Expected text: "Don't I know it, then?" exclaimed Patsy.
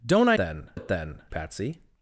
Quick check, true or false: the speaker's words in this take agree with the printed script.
false